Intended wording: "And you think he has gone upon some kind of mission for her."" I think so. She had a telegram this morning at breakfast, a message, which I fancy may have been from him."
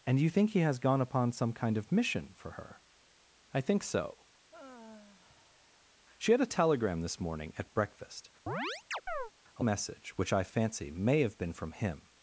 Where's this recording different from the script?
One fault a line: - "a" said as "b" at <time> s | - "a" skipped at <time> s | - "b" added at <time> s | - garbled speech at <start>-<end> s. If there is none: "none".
none